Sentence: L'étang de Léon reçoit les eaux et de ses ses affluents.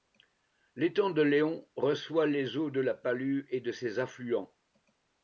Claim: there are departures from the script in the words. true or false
true